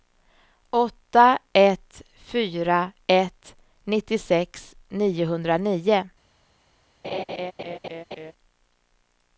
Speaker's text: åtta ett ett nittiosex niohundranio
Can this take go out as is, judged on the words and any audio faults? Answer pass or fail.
fail